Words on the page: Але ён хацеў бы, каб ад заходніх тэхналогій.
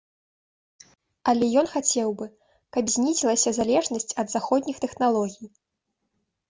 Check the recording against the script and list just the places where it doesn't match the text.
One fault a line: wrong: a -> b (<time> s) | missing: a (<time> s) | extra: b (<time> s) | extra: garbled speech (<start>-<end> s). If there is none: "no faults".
extra: знізілася залежнасць (3.0 s)